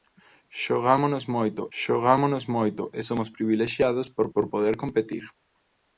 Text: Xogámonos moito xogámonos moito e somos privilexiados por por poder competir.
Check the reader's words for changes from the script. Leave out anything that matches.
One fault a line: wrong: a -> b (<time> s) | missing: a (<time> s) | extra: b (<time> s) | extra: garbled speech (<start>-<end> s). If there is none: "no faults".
no faults